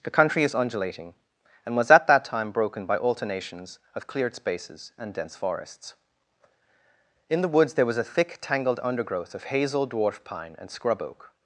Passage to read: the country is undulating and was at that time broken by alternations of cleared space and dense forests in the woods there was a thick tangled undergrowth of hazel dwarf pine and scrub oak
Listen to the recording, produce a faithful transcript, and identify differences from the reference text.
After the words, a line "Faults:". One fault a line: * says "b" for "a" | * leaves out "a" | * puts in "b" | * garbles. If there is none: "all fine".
the country is undulating and was at that time broken by alternations of cleared spaces and dense forests in the woods there was a thick tangled undergrowth of hazel dwarf pine and scrub oak
Faults:
* says "spaces" for "space"